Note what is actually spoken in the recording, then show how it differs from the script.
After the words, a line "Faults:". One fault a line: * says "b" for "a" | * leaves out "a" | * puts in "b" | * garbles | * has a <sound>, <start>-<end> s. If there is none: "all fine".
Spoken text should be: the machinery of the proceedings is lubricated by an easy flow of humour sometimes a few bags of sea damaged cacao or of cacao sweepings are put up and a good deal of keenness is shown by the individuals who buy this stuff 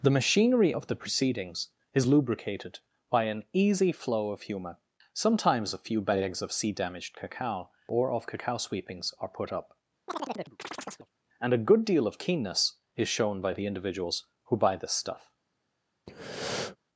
the machinery of the proceedings is lubricated by an easy flow of humour sometimes a few bags of sea damaged cacao or of cacao sweepings are put up and a good deal of keenness is shown by the individuals who buy this stuff
Faults:
* has a chirp, 10.1-11.1 s
* has a breath, 16.1-16.8 s